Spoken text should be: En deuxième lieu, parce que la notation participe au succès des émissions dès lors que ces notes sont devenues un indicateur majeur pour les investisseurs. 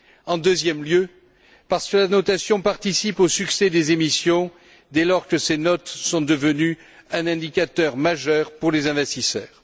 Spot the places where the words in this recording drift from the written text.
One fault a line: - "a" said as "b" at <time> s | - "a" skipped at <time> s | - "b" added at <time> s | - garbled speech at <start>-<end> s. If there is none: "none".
none